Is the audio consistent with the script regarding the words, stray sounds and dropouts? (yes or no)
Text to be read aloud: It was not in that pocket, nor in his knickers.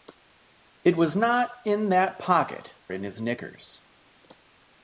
no